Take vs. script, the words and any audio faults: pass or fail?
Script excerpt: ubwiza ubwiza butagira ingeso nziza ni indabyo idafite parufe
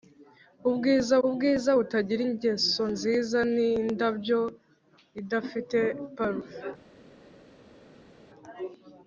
pass